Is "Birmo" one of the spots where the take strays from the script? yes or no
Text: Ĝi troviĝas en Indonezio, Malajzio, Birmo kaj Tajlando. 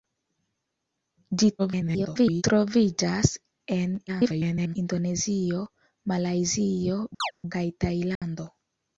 yes